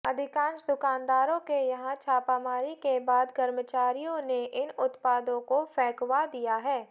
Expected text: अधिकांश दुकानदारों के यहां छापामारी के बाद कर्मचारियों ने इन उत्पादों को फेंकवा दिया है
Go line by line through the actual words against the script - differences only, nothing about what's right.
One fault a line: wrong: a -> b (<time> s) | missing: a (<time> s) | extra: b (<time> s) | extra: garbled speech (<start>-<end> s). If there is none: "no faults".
no faults